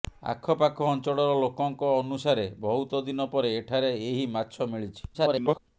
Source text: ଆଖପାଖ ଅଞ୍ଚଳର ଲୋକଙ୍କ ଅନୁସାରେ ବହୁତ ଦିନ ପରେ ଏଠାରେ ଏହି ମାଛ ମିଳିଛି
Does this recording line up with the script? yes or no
no